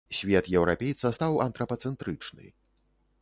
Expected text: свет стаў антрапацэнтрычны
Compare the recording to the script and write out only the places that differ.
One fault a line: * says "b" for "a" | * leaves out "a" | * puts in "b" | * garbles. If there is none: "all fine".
* puts in "еўрапейца"